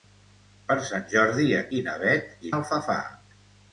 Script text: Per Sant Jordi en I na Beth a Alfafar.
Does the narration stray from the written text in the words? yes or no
no